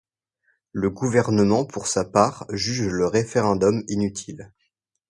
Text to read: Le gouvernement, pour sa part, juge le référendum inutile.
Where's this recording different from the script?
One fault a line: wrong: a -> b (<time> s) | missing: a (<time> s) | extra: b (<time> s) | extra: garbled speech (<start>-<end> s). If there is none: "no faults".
no faults